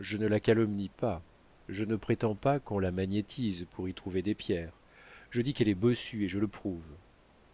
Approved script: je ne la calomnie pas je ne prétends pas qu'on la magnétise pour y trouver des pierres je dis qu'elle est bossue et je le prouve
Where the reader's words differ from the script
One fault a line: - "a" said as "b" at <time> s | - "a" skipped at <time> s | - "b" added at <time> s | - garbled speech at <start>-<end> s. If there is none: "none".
none